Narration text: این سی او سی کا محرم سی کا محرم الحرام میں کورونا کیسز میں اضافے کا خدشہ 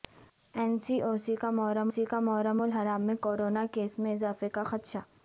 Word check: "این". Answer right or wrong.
right